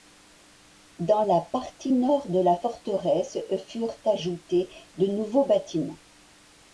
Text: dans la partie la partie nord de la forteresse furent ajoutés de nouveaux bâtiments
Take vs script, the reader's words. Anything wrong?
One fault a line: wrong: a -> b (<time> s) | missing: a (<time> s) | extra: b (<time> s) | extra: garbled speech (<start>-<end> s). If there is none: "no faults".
missing: la partie (1.9 s)